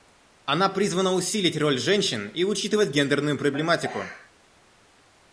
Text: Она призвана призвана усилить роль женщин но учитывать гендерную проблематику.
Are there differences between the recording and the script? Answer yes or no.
yes